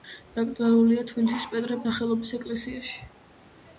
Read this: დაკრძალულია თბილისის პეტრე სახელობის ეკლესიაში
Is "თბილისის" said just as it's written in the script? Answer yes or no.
yes